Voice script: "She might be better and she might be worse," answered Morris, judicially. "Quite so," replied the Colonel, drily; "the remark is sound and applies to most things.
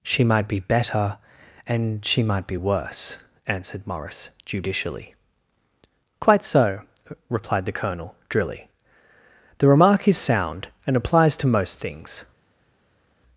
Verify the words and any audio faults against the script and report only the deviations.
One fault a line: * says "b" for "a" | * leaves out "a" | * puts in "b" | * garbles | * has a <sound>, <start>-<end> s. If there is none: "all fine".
all fine